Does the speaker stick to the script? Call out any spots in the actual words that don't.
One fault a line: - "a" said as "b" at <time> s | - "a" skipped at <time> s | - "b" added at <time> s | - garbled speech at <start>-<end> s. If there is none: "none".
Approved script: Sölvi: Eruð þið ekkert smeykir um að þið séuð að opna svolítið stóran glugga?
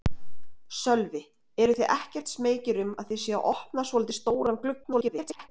- garbled speech at 4.8-5.5 s